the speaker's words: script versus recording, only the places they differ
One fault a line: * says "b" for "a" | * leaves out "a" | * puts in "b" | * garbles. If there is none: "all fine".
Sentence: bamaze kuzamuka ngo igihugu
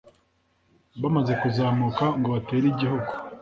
* puts in "batere"